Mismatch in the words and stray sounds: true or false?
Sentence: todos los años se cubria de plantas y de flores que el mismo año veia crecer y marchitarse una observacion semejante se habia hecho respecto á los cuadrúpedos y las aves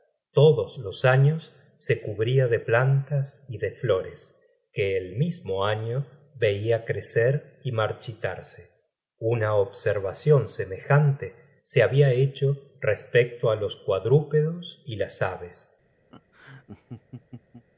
true